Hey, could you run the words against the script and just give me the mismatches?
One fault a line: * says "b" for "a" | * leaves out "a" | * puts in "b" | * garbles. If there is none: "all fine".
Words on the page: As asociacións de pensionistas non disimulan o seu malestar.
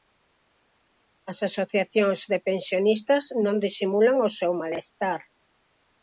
all fine